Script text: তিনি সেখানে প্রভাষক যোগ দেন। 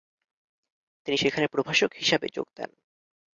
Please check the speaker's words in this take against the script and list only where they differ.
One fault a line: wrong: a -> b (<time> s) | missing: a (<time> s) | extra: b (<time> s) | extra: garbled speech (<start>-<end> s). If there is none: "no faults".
extra: হিসাবে (1.9 s)